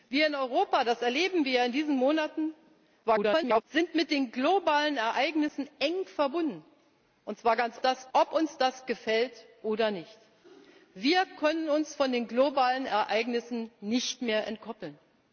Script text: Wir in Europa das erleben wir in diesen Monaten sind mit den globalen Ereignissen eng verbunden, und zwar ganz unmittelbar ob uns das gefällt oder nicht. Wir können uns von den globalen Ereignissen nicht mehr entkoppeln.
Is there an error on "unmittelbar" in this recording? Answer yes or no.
yes